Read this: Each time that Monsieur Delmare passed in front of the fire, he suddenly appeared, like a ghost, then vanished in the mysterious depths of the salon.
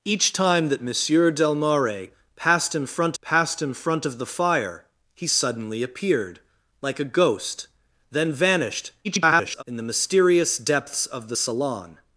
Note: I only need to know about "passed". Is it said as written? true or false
true